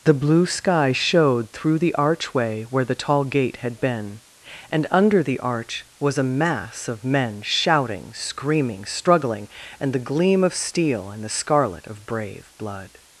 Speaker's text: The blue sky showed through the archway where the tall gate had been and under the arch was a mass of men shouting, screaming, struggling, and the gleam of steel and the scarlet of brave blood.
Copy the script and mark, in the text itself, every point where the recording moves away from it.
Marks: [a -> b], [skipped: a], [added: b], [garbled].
The blue sky showed through the archway where the tall gate had been and under the arch was a mass of men shouting, screaming, struggling, and the gleam of steel and the scarlet of brave blood.